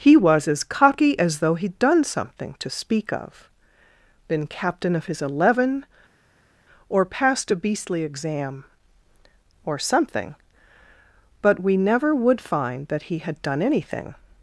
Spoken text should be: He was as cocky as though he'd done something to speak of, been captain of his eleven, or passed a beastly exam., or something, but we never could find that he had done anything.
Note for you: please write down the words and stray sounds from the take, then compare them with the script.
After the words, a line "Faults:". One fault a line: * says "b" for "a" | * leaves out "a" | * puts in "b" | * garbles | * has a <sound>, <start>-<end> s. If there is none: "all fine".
He was as cocky as though he'd done something to speak of, been captain of his eleven, or passed a beastly exam., or something, but we never would find that he had done anything.
Faults:
* says "would" for "could"